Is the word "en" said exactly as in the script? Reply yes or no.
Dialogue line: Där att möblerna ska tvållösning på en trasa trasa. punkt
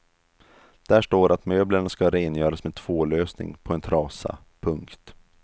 yes